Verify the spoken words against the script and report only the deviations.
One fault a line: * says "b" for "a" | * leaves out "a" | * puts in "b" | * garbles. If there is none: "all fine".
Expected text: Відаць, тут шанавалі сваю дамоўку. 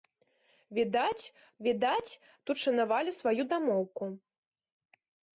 * puts in "відаць"